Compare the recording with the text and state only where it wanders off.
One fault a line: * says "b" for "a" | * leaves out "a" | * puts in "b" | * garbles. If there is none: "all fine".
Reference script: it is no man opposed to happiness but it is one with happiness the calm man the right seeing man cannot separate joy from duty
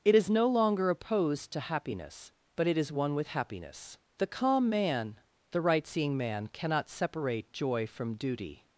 * says "longer" for "man"